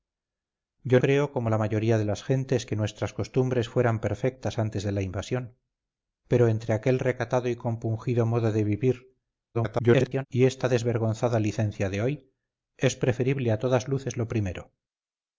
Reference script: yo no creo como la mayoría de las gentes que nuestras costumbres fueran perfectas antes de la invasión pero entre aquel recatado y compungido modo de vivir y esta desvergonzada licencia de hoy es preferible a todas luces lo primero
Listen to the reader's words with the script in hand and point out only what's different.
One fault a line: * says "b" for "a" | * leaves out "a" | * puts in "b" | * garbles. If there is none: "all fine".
* leaves out "no"
* garbles